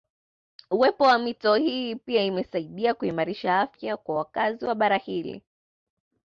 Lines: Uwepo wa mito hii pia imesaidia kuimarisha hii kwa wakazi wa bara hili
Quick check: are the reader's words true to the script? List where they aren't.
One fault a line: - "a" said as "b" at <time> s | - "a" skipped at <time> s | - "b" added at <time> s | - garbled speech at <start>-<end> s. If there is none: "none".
- "hii" said as "afya" at 3.6 s